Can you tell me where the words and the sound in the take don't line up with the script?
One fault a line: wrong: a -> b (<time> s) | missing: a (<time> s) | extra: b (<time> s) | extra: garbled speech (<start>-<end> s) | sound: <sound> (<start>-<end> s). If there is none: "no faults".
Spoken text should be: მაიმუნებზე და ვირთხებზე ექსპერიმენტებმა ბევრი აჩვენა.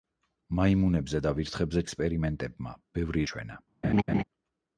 sound: laugh (3.8-4.2 s)